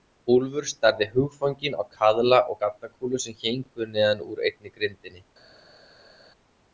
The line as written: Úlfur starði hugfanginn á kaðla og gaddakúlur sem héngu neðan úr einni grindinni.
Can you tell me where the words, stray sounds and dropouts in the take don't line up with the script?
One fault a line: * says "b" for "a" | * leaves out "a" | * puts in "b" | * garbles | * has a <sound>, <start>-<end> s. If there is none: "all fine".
all fine